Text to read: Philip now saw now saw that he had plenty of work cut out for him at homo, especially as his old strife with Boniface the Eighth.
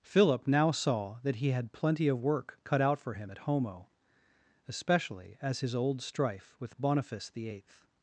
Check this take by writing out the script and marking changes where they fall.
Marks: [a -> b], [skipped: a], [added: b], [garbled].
Philip now saw [skipped: now saw] that he had plenty of work cut out for him at homo, especially as his old strife with Boniface the Eighth.